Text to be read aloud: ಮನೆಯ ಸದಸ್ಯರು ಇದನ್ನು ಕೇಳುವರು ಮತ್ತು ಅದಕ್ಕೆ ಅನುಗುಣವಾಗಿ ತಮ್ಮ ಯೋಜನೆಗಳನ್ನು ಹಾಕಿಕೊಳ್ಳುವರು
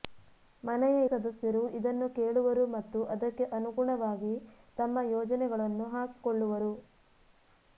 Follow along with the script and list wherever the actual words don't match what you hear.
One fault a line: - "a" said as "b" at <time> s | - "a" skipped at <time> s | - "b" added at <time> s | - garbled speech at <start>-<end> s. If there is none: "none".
none